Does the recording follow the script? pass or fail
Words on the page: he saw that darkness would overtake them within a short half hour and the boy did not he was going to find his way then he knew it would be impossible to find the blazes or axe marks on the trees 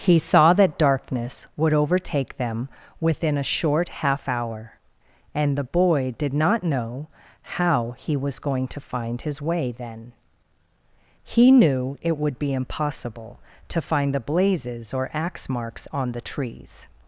fail